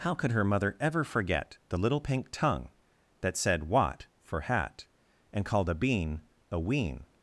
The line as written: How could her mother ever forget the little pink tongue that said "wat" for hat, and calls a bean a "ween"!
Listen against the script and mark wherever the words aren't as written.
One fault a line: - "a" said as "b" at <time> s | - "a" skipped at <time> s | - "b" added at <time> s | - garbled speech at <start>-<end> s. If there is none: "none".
- "calls" said as "called" at 5.4 s